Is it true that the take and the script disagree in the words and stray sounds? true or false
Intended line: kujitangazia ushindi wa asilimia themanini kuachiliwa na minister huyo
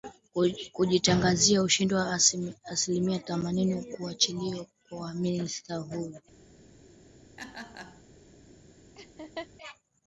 true